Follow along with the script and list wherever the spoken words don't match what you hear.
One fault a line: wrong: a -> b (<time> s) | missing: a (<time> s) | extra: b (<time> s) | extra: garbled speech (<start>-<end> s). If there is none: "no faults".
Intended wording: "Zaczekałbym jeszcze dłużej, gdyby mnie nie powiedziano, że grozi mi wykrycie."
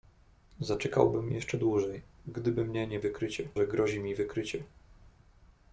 wrong: powiedziano -> wykrycie (3.0 s)